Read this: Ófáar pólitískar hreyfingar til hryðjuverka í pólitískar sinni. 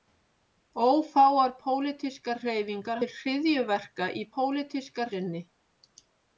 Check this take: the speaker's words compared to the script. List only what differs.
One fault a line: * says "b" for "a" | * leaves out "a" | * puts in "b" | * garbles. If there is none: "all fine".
all fine